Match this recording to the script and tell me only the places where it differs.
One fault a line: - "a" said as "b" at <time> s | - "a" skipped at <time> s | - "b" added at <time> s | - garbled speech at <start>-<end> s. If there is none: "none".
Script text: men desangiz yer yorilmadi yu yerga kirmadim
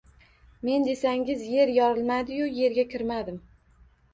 none